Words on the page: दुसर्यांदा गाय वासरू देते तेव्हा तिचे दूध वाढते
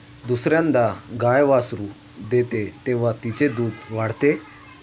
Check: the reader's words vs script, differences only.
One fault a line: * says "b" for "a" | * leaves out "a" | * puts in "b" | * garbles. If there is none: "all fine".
all fine